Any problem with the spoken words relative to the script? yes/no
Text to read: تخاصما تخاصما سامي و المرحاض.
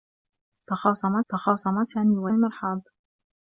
no